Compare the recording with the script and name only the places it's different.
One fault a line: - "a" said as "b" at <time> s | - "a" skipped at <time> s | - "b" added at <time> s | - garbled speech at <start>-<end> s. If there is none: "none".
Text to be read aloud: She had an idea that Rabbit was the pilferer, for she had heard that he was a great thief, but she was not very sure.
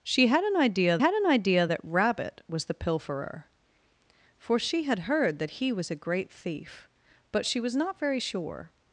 - "had an idea" added at 1.0 s